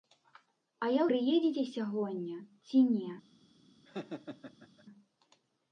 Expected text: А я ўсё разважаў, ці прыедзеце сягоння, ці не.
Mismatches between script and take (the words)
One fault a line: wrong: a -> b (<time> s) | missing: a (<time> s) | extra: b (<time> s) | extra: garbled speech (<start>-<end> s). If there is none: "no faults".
missing: ўсё разважаў ці (1.0 s)